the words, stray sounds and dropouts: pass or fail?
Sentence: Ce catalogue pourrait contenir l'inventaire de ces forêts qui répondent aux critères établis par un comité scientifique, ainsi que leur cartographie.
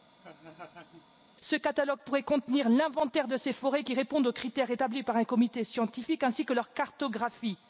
fail